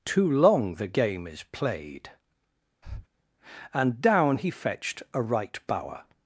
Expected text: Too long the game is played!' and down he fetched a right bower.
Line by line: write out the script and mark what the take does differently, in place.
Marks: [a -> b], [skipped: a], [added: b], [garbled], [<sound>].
Too long the game is played!' [breath] and down he fetched a right bower.